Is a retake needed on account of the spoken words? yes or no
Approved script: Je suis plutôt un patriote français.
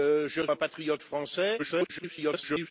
yes